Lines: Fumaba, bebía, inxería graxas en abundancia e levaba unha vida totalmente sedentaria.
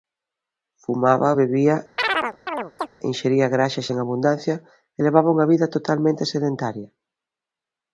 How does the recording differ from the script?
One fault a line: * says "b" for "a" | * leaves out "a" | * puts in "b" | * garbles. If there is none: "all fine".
all fine